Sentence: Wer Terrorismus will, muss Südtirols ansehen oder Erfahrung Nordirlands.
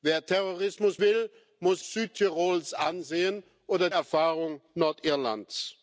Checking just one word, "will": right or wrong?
right